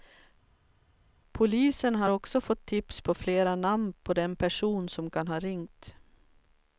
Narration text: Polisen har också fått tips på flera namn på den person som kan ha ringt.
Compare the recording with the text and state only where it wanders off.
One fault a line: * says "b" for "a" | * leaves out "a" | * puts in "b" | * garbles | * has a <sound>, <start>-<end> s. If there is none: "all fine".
all fine